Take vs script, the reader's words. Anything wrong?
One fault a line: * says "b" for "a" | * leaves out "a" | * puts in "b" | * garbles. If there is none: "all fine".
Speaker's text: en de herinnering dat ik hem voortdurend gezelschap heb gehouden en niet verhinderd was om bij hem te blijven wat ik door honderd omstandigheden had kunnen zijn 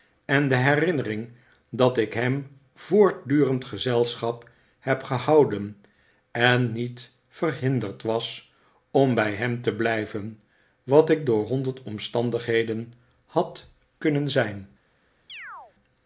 all fine